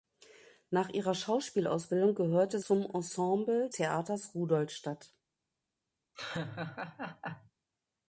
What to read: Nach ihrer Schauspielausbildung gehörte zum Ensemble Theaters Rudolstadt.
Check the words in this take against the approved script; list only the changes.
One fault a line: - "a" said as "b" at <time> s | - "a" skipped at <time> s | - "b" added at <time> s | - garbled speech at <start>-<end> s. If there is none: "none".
none